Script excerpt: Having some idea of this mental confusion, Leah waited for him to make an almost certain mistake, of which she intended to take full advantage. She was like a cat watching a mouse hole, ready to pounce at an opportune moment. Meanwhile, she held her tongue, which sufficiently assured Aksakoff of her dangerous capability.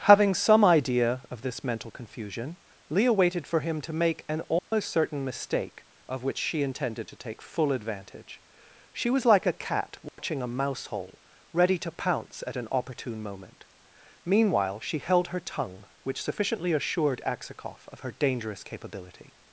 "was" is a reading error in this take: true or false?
false